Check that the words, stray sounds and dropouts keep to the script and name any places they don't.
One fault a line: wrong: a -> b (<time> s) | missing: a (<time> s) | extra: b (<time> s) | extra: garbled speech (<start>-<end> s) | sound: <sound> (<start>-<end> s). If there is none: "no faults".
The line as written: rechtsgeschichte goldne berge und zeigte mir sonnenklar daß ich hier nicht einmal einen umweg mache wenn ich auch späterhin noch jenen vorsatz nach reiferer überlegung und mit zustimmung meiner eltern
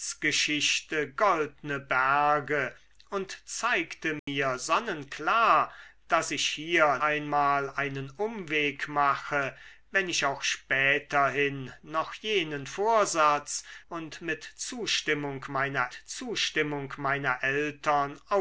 sound: dropout (4.2-4.3 s)
missing: nicht (7.0 s)
wrong: nach reiferer überlegung und mit -> und mit zustimmung meiner (13.9 s)